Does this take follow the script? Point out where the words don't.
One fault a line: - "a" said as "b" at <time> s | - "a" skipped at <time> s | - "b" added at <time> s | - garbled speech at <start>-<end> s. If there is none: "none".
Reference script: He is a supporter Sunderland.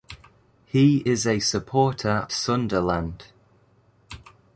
none